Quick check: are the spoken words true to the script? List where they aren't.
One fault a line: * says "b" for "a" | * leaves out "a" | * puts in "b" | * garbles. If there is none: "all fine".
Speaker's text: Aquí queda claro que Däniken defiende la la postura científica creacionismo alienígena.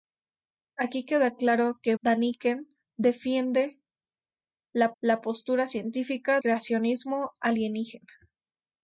all fine